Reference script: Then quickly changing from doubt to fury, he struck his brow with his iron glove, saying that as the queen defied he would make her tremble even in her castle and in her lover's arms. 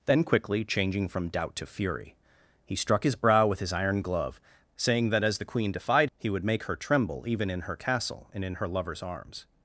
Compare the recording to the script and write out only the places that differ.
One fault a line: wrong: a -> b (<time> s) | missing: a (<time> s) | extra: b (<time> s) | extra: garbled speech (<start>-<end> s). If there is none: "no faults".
no faults